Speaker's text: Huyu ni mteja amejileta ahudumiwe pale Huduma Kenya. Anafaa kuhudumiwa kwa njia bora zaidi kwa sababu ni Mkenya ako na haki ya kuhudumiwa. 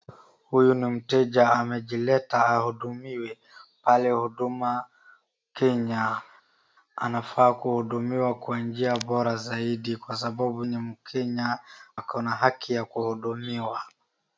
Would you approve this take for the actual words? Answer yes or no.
yes